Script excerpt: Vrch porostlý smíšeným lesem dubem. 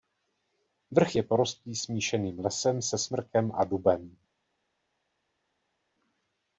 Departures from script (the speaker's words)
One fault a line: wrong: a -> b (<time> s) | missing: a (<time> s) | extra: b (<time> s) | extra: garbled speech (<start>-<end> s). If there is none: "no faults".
extra: je (1.1 s)
extra: se smrkem a (2.8 s)